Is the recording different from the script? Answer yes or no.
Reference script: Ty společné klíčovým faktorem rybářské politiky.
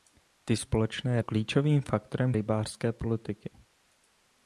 no